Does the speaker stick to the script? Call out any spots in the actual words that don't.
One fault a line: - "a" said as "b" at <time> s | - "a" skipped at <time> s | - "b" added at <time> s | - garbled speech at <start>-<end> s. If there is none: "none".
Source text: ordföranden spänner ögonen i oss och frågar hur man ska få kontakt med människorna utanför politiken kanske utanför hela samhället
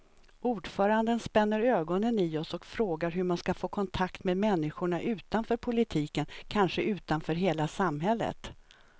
none